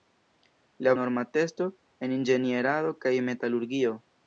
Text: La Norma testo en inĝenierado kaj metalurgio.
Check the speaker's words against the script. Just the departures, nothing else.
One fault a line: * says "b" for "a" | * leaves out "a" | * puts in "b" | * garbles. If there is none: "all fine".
all fine